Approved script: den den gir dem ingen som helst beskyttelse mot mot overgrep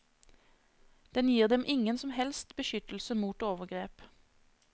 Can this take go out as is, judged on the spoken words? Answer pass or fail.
fail